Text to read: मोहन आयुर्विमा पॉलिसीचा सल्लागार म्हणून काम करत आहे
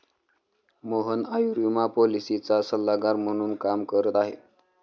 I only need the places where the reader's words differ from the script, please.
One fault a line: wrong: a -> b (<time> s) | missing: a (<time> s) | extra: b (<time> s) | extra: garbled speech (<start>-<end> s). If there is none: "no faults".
no faults